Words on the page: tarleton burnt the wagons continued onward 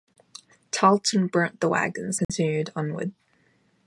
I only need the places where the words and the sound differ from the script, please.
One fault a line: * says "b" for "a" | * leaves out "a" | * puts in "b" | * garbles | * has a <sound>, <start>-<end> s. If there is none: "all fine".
* has a dropout, 2.2-2.3 s